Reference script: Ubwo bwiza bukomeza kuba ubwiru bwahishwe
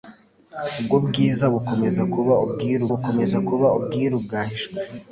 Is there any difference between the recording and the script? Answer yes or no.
yes